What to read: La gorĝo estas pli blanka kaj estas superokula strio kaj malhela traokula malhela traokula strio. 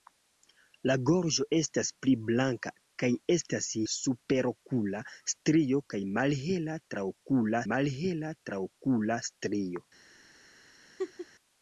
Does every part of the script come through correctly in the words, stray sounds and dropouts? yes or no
no